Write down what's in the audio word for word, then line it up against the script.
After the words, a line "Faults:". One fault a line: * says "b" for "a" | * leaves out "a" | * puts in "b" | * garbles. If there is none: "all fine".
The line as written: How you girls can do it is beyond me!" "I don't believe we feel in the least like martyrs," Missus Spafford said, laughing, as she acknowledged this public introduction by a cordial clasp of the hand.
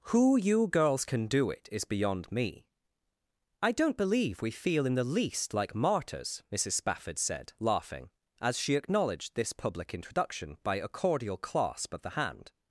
Who you girls can do it is beyond me!" "I don't believe we feel in the least like martyrs," Missus Spafford said, laughing, as she acknowledged this public introduction by a cordial clasp of the hand.
Faults:
* says "Who" for "How"